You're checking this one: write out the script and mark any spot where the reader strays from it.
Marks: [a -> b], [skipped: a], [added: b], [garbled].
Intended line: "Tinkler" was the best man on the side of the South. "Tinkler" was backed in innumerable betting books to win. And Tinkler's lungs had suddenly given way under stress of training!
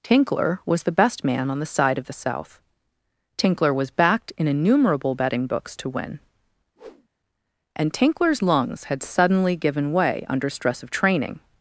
"Tinkler" was the best man on the side of the South. "Tinkler" was backed in innumerable betting books to win. And Tinkler's lungs had suddenly given way under stress of training!